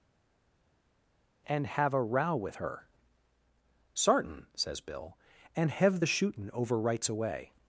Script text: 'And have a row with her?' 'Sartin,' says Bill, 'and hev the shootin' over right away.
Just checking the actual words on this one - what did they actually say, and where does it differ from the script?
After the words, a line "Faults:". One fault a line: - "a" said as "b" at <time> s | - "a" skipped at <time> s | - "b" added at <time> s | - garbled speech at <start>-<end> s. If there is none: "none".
'And have a row with her?' 'Sartin,' says Bill, 'and hev the shootin' over rights away.
Faults:
- "right" said as "rights" at 6.8 s